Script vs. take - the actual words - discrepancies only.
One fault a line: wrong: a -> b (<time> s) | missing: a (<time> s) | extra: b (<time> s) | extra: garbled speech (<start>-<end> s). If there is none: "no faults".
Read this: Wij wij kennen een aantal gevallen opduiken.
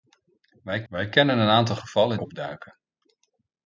no faults